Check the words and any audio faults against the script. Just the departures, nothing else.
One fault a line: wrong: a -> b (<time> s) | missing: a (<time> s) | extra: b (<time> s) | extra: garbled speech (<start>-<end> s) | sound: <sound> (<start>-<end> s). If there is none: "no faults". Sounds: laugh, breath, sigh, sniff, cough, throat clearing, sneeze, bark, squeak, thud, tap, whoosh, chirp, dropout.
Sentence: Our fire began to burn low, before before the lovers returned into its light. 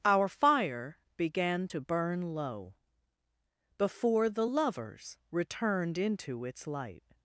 missing: before (4.3 s)